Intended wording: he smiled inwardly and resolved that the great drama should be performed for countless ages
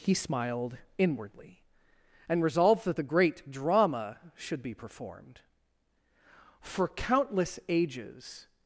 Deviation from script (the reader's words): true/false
false